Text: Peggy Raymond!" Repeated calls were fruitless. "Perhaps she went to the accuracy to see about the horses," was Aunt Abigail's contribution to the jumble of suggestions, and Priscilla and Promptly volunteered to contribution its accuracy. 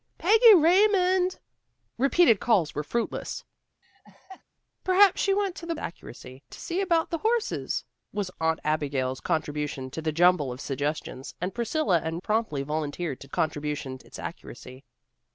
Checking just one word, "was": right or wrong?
right